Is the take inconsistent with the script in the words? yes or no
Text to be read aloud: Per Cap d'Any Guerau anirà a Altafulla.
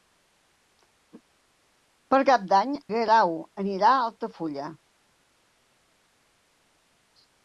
no